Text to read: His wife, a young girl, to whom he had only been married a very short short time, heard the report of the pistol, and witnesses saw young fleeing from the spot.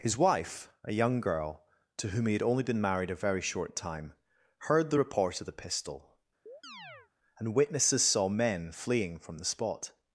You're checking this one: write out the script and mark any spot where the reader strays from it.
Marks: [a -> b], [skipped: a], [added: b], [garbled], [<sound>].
His wife, a young girl, to whom he had only been married a very short [skipped: short] time, heard the report of the pistol, [chirp] and witnesses saw [young -> men] fleeing from the spot.